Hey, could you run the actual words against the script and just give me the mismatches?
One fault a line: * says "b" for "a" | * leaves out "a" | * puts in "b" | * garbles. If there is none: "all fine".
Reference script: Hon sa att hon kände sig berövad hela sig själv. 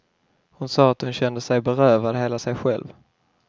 all fine